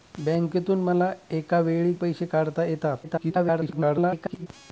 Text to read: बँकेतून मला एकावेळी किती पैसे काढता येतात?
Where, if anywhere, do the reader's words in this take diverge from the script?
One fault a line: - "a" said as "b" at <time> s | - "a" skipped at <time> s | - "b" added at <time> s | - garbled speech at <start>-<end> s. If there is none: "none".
- "किती" skipped at 1.9 s
- garbled speech at 3.0-4.5 s